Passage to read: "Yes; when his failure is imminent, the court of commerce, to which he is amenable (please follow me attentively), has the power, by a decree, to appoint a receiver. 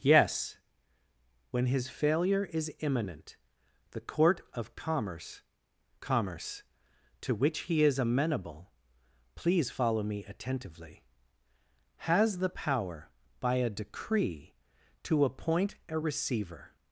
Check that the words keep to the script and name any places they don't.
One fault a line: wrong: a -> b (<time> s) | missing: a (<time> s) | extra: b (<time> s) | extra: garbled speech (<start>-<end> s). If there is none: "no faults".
extra: commerce (6.0 s)